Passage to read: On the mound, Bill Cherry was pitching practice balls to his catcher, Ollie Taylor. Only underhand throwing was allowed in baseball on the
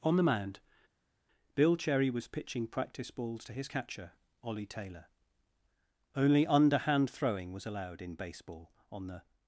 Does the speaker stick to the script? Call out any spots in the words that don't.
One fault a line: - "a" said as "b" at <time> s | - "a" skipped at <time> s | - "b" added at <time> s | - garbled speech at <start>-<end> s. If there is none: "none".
none